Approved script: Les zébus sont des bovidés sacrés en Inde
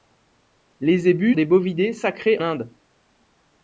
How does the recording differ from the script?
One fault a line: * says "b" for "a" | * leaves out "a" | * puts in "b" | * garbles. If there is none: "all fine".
* leaves out "sont"
* leaves out "en"